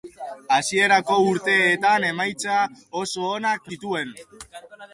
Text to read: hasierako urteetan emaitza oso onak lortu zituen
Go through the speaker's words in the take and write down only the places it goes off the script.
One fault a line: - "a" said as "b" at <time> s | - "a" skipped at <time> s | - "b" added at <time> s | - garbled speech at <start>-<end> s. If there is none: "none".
- "lortu" skipped at 3.7 s